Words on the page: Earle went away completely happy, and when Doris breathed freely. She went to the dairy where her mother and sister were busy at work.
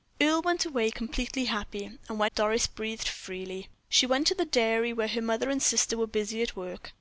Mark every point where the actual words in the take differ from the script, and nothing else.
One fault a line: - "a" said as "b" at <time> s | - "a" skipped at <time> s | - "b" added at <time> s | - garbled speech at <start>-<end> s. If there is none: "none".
none